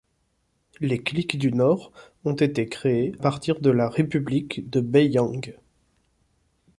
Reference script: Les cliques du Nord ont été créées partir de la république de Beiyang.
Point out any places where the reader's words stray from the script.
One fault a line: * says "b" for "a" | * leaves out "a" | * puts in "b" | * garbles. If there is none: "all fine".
all fine